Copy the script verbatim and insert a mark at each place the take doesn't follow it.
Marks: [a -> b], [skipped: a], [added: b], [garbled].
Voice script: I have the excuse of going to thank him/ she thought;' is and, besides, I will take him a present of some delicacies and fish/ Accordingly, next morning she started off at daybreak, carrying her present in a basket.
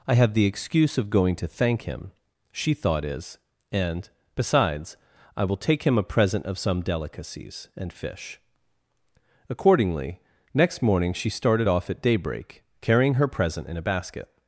I have the excuse of going to thank him/ she thought;' is and, besides, I will take him a present of some delicacies and fish/ Accordingly, next morning she started off at daybreak, carrying her present in a basket.